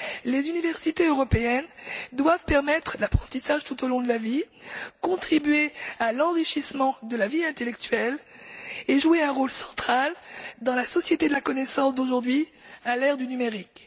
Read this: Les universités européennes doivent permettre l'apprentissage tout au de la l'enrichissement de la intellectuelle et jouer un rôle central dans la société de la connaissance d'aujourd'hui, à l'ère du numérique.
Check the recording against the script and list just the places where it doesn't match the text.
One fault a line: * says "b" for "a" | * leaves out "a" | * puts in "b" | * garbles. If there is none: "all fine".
* puts in "long"
* puts in "vie contribuer à"
* puts in "vie"